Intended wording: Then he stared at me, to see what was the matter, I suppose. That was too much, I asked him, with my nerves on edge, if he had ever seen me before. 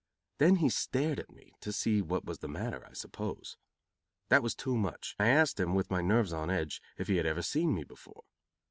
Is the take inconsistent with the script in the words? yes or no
no